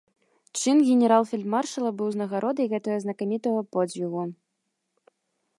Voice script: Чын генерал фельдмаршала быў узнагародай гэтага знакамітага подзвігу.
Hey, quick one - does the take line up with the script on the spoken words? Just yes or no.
yes